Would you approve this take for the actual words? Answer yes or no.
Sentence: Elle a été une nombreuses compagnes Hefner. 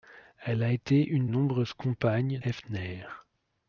yes